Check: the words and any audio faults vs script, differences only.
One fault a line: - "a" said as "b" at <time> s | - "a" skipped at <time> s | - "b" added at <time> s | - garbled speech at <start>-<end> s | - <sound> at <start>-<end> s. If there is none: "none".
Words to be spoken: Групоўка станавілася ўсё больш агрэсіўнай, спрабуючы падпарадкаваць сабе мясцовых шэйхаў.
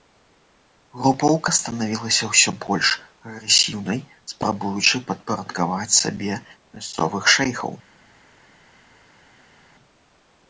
none